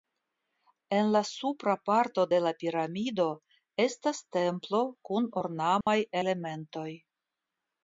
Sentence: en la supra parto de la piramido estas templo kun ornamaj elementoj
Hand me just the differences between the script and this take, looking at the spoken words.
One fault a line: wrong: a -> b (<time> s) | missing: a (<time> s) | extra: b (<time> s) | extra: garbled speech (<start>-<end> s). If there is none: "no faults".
no faults